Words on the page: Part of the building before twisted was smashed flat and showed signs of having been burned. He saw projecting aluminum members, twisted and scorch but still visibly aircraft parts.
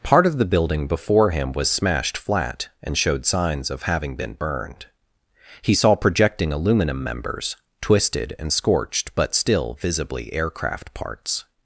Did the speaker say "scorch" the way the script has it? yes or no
no